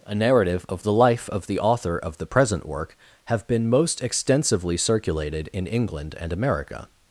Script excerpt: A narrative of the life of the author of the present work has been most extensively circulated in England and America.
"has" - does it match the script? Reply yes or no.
no